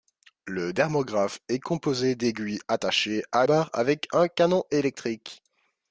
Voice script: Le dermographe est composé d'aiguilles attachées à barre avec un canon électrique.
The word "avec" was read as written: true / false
true